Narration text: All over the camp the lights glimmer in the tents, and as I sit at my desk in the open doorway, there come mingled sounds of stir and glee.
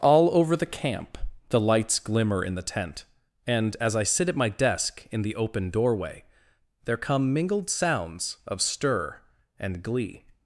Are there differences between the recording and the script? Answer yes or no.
yes